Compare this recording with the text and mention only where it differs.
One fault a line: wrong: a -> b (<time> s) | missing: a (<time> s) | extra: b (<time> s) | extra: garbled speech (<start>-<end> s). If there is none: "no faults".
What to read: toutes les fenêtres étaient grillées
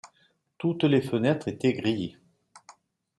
no faults